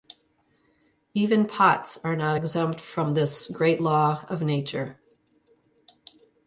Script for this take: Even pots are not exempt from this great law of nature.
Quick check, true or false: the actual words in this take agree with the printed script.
true